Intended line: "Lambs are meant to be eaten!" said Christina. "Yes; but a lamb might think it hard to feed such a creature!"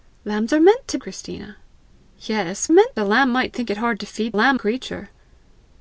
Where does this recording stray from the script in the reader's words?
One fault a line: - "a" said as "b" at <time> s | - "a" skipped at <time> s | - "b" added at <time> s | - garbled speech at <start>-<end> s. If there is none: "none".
- "be eaten said" skipped at 1.0 s
- "but" said as "meant" at 2.7 s
- "such" said as "lamb" at 4.3 s